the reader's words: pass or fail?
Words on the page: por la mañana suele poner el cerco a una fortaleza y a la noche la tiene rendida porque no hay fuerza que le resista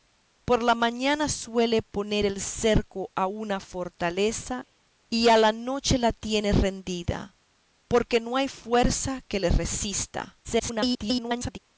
fail